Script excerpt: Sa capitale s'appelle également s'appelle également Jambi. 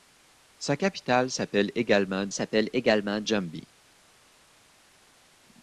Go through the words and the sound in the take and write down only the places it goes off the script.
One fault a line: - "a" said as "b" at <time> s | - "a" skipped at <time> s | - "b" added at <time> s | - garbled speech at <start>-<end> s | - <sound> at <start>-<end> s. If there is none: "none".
none